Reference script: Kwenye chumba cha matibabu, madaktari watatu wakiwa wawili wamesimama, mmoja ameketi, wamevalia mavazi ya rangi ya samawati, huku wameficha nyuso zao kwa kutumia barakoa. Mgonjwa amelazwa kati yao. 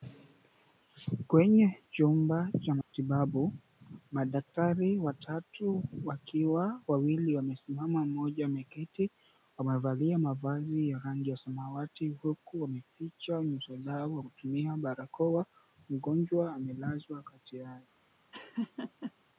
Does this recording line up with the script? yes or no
yes